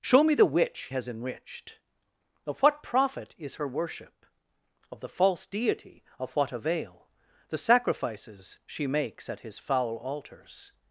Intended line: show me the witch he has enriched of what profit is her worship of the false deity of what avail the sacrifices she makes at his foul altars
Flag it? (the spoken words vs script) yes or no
yes